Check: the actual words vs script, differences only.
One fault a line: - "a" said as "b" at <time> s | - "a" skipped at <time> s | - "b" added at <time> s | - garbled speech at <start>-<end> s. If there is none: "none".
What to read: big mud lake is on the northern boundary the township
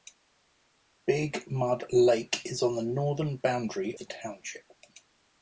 none